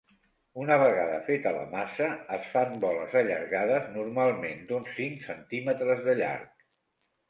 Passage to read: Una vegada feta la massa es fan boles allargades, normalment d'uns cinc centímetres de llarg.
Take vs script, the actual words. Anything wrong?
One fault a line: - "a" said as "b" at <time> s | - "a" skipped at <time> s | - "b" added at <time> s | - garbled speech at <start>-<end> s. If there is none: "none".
none